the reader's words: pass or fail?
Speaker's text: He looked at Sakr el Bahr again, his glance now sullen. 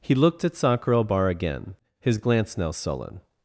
pass